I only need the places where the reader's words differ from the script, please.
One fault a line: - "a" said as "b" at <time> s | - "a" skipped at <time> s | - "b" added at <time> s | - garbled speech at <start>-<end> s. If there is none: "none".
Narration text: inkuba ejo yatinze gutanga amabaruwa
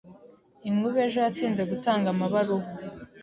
none